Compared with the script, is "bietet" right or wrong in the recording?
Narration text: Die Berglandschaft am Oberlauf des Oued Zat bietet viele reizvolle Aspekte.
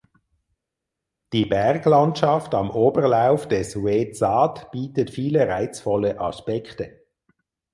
right